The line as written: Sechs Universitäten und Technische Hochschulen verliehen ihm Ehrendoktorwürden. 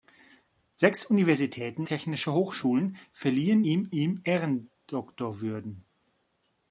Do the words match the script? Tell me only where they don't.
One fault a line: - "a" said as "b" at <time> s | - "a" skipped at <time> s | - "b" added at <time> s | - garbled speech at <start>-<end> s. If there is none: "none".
- "und" skipped at 1.9 s
- "ihm" added at 3.9 s